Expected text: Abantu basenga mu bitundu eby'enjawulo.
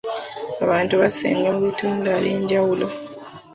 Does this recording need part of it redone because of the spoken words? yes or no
no